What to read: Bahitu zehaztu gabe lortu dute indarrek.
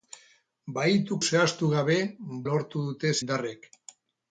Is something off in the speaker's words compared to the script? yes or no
no